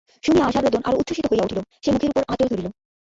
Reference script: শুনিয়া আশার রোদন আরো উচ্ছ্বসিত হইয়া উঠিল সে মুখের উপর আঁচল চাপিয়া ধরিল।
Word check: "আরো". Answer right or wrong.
right